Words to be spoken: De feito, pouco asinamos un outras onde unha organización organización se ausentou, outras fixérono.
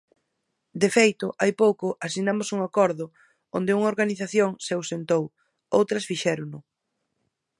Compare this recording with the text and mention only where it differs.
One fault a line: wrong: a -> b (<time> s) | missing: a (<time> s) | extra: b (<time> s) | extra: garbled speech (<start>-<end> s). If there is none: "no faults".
extra: hai (1.4 s)
wrong: outras -> acordo (2.7 s)
missing: organización (4.5 s)